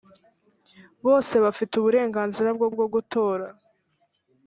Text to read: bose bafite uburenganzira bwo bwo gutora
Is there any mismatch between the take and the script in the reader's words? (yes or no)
no